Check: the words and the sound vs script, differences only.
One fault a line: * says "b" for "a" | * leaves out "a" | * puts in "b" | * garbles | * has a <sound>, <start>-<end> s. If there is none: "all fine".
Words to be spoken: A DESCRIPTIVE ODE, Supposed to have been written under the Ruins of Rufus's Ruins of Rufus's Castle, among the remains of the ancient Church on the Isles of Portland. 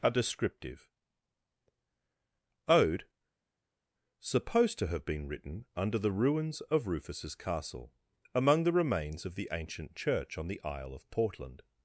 * leaves out "Ruins of Rufus's"
* says "Isle" for "Isles"